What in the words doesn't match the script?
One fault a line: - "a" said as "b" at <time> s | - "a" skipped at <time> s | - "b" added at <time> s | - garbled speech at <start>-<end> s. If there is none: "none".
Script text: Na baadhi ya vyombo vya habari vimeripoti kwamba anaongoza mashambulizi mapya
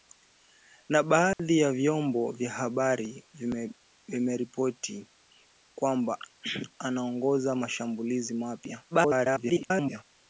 - garbled speech at 8.9-10.0 s